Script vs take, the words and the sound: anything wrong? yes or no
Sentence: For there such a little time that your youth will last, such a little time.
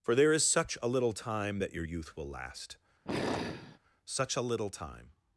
yes